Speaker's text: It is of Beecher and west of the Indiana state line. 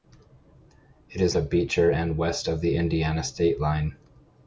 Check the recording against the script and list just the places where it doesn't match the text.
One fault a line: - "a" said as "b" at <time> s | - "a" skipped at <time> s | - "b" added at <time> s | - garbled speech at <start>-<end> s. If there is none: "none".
none